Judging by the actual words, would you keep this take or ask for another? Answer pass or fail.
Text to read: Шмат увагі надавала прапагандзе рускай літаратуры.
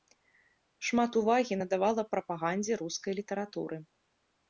pass